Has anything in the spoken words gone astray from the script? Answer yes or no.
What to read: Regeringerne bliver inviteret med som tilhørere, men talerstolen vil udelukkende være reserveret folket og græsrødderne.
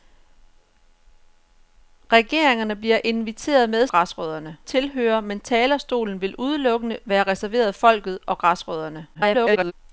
yes